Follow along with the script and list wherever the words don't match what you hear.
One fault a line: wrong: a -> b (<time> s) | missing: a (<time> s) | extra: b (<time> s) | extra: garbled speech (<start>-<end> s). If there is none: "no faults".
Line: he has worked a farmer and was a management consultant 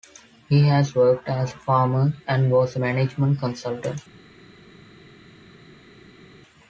extra: as (1.3 s)